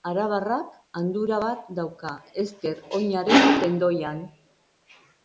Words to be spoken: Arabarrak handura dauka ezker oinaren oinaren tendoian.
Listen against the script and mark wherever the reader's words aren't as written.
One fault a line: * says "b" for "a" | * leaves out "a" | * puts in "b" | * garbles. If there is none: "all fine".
* puts in "bat"
* leaves out "oinaren"